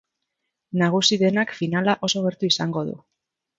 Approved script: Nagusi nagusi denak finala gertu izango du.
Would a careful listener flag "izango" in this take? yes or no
no